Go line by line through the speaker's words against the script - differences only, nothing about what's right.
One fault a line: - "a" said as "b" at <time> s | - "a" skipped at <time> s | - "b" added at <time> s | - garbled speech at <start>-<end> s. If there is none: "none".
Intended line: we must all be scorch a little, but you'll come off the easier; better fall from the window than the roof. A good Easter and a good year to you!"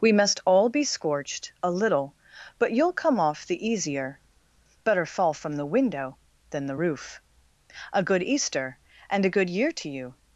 - "scorch" said as "scorched" at 0.8 s